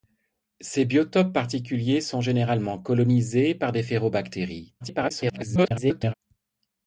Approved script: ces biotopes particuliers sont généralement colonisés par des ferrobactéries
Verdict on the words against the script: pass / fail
fail